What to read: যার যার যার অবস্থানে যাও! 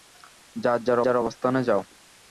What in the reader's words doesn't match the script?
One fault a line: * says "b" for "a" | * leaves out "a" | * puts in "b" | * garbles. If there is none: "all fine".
all fine